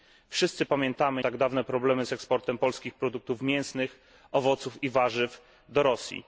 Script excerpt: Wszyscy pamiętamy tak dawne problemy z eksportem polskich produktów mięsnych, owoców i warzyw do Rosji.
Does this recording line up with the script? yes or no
yes